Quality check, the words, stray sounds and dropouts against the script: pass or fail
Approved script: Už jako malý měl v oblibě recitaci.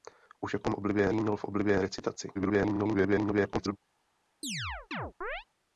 fail